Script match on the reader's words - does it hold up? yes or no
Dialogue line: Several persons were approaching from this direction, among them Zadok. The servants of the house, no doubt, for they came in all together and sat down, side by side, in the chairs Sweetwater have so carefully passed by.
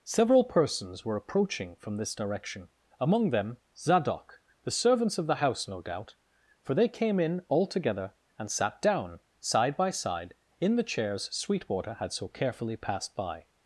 no